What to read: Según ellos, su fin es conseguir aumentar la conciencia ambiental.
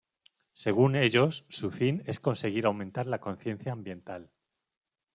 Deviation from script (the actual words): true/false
false